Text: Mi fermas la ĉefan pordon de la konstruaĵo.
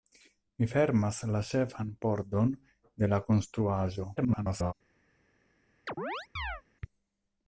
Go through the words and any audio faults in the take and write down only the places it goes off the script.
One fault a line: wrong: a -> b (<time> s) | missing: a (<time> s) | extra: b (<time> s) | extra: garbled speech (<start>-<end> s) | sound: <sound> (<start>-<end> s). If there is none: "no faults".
extra: garbled speech (4.2-4.7 s)
sound: chirp (5.9-6.6 s)